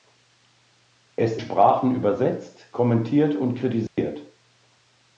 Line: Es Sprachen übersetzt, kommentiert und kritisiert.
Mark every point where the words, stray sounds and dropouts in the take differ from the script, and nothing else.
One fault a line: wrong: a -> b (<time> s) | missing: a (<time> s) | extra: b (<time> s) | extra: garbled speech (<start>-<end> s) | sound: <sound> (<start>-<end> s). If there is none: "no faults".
sound: dropout (3.9-4.0 s)